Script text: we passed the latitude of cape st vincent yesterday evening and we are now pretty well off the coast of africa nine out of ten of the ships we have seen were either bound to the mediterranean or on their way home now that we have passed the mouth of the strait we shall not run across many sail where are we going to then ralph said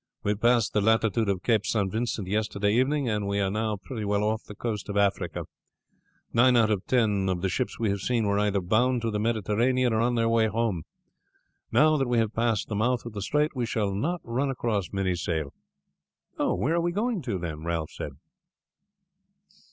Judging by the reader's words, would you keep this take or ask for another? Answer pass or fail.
pass